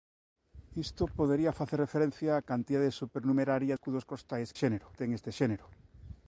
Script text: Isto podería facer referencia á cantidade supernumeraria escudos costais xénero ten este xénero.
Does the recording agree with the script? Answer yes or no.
yes